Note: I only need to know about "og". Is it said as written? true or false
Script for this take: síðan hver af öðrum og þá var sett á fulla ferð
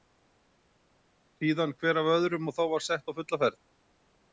true